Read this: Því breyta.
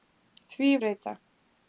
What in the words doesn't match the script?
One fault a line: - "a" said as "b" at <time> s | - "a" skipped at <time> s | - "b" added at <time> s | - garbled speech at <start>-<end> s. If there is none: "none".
none